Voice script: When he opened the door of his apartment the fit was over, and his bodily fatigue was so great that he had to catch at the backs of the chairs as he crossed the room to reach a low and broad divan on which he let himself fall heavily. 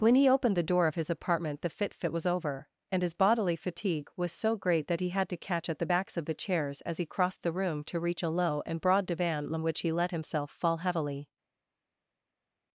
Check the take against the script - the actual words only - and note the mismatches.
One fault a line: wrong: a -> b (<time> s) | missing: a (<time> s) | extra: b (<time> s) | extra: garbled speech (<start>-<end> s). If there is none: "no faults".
extra: fit (1.9 s)